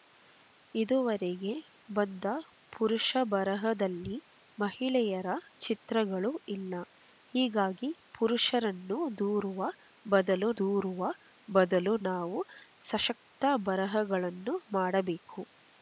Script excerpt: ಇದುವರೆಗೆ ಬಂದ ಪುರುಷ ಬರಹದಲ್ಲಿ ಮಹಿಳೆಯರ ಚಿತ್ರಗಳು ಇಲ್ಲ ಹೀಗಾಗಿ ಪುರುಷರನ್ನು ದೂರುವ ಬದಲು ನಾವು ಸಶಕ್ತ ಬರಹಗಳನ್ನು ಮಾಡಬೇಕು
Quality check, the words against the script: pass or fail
fail